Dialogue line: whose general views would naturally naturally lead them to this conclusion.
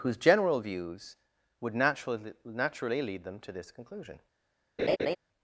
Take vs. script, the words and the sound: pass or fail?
fail